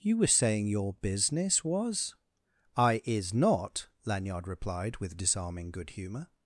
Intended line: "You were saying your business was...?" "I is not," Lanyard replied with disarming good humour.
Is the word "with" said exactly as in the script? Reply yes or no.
yes